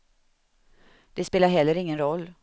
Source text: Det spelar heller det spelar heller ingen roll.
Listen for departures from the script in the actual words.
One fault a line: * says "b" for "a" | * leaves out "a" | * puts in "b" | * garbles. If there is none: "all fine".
* leaves out "det spelar heller"